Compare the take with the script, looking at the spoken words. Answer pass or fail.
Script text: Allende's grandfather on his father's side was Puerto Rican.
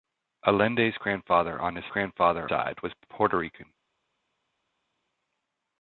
fail